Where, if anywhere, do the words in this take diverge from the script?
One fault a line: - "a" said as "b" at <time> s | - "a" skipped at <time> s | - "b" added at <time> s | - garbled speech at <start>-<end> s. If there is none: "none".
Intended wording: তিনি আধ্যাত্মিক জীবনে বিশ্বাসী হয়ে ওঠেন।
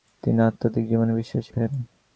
- "হয়ে" skipped at 1.5 s